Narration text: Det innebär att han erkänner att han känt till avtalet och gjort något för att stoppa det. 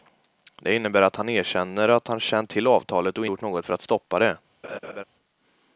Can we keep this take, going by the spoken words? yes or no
yes